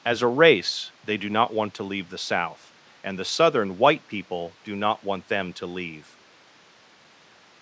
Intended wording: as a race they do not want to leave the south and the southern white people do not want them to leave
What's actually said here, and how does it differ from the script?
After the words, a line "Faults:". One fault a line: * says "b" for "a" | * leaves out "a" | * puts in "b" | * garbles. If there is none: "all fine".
as a race they do not want to leave the south and the southern white people do not want them to leave
Faults:
all fine